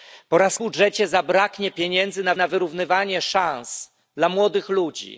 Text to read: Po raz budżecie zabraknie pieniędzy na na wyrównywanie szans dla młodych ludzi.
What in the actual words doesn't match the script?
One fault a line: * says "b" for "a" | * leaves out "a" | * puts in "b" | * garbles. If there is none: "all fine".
all fine